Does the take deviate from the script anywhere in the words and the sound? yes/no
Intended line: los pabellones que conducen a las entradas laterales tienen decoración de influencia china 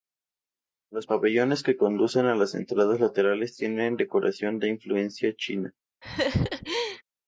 yes